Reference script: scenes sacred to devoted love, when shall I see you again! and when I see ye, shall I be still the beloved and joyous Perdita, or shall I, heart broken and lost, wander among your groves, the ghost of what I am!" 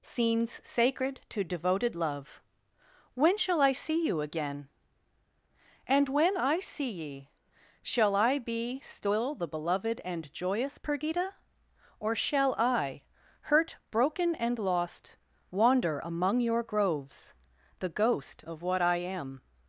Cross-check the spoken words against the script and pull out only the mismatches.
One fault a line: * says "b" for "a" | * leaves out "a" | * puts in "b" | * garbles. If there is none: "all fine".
* says "hurt" for "heart"